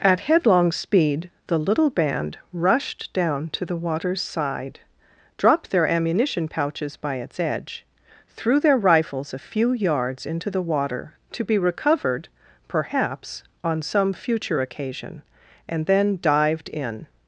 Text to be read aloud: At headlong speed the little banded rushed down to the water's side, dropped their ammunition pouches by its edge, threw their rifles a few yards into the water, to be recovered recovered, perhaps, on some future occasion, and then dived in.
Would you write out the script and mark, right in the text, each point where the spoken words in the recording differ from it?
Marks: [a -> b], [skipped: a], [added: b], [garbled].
At headlong speed the little [banded -> band] rushed down to the water's side, dropped their ammunition pouches by its edge, threw their rifles a few yards into the water, to be recovered [skipped: recovered,] perhaps, on some future occasion, and then dived in.